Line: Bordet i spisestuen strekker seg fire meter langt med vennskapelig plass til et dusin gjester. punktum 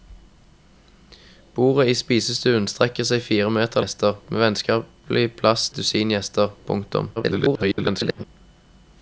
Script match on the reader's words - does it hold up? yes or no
no